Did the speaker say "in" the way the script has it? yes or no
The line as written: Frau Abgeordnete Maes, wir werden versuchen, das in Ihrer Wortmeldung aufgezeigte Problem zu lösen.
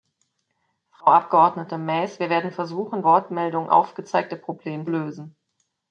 no